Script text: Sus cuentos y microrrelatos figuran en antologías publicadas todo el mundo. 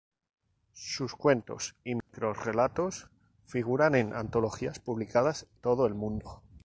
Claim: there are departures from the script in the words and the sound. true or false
true